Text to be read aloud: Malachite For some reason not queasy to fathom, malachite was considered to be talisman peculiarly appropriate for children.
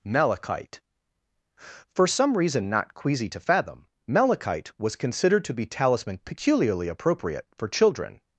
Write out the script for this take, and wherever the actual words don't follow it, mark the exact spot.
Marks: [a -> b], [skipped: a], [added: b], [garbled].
Malachite For some reason not queasy to fathom, malachite was considered to be talisman peculiarly appropriate for children.